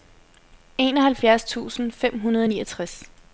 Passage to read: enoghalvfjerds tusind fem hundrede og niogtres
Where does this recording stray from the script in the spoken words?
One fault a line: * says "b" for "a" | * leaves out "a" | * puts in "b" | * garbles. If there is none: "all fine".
all fine